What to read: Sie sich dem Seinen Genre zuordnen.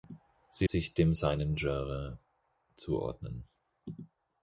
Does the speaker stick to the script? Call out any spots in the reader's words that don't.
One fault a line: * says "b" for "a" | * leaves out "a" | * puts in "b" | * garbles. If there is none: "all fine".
all fine